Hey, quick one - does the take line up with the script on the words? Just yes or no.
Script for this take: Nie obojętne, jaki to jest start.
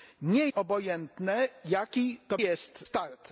yes